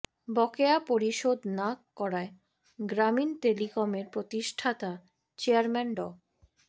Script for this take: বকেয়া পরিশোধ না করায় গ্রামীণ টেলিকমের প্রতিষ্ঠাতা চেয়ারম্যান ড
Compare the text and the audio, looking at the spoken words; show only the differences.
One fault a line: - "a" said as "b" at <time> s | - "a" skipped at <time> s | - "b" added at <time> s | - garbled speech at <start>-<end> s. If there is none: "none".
none